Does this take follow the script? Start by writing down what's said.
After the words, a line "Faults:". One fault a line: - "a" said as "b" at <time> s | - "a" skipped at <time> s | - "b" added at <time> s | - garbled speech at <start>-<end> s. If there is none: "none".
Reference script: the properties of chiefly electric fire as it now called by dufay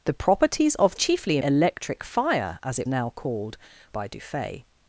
the properties of chiefly electric fire as it now called by dufay
Faults:
none